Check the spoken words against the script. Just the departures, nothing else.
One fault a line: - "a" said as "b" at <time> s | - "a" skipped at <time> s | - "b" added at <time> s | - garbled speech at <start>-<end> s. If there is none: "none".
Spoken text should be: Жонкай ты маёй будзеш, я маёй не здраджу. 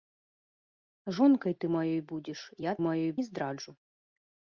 none